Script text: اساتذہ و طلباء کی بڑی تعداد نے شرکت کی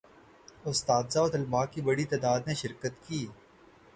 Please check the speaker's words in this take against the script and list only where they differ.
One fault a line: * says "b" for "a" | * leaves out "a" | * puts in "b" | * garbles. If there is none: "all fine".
all fine